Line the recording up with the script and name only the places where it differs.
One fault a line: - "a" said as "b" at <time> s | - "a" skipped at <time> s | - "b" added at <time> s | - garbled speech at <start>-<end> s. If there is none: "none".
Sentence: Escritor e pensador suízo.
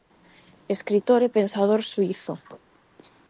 none